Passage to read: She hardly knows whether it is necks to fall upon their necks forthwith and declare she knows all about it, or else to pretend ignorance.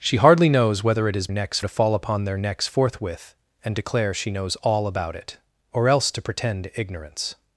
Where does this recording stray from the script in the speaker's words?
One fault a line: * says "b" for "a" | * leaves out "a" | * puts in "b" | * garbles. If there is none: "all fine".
all fine